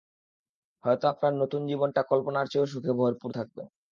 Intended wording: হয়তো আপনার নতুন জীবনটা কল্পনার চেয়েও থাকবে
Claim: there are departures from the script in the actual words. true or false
true